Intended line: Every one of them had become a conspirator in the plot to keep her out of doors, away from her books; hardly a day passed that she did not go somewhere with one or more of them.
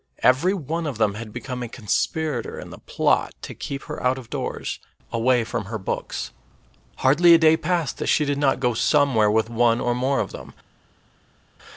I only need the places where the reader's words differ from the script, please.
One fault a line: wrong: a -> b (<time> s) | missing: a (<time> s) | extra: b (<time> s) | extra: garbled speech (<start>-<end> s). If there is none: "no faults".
no faults